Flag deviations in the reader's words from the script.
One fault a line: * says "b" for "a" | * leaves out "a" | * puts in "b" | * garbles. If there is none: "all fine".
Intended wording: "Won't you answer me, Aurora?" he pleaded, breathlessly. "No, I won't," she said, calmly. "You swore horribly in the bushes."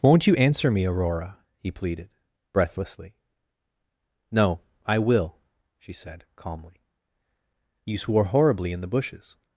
* says "will" for "won't"